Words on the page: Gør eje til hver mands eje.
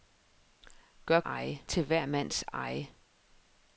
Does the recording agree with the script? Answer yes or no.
yes